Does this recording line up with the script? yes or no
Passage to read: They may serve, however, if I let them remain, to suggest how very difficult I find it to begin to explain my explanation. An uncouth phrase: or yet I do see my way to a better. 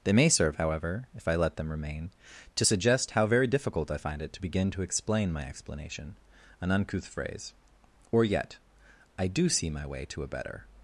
yes